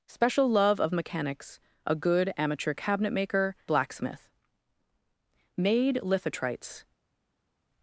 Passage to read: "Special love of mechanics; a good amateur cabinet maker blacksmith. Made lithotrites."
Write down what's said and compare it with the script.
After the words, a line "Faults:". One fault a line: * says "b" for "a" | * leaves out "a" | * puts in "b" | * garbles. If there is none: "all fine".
"Special love of mechanics; a good amateur cabinet maker blacksmith. Made lithotrites."
Faults:
all fine